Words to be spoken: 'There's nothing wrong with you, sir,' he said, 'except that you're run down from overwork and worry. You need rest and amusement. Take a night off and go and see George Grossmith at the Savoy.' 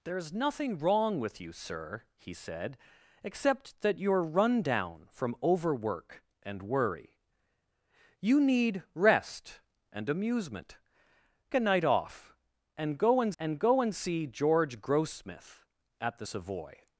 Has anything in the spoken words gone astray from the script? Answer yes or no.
yes